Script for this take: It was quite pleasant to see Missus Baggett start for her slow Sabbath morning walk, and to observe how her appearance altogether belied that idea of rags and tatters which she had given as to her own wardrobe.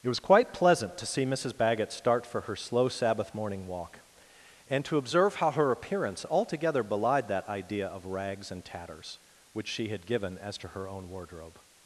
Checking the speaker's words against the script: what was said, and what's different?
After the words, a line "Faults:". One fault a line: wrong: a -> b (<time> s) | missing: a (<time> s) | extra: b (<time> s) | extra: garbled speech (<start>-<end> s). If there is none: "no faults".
It was quite pleasant to see Missus Baggett start for her slow Sabbath morning walk, and to observe how her appearance altogether belied that idea of rags and tatters which she had given as to her own wardrobe.
Faults:
no faults